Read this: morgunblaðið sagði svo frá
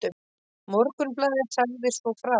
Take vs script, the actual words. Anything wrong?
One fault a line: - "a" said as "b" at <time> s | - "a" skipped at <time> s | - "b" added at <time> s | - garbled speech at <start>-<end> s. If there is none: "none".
none